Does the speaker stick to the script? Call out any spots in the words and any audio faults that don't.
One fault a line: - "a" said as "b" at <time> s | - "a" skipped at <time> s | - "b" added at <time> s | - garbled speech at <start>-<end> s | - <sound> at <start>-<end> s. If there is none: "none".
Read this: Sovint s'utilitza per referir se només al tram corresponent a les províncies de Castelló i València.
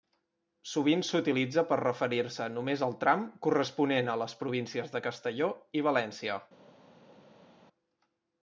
none